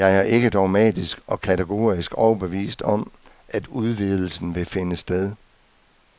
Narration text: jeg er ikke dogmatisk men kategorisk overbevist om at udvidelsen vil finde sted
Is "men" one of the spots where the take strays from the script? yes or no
yes